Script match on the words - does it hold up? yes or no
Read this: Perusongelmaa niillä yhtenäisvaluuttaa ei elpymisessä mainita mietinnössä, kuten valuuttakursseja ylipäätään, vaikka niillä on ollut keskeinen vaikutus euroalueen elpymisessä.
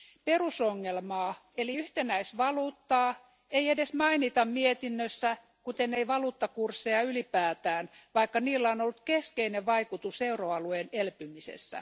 no